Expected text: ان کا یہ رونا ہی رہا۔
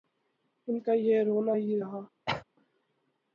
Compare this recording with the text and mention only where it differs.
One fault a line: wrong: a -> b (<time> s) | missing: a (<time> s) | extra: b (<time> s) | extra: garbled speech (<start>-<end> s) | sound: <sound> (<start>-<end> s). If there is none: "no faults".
sound: cough (2.3-2.4 s)